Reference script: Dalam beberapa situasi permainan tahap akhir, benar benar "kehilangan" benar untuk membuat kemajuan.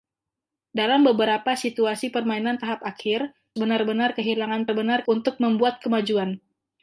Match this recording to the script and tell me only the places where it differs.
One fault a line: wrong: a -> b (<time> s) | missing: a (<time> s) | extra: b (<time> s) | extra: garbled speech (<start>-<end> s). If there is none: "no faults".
no faults